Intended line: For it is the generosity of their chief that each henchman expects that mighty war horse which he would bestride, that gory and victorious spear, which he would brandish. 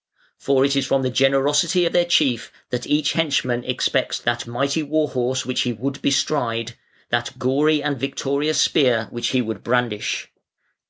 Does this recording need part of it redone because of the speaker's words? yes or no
yes